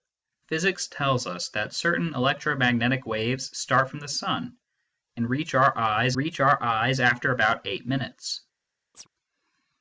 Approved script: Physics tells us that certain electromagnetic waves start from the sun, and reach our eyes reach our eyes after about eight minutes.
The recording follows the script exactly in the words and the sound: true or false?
false